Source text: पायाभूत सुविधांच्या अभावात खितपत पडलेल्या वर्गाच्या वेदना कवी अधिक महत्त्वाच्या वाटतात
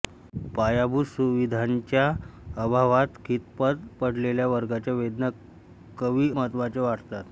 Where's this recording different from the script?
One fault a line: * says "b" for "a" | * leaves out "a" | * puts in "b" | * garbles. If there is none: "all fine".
* leaves out "अधिक"